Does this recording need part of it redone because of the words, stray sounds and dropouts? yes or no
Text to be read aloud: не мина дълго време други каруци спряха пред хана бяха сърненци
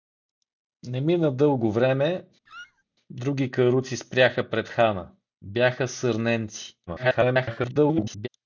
yes